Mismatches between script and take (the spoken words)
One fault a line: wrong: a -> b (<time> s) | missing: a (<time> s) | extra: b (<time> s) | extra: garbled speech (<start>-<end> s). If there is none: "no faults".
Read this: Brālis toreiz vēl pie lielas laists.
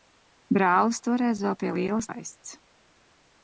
no faults